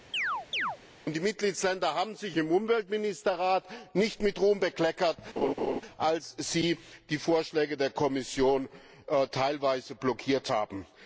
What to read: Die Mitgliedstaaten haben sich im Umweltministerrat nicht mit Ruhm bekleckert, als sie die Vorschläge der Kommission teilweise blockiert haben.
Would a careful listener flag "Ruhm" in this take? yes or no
no